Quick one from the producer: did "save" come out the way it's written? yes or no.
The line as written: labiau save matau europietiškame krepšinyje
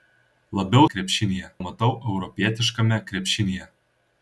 no